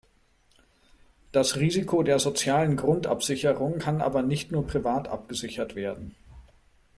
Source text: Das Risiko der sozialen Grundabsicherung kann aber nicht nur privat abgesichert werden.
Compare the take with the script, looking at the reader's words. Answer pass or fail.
pass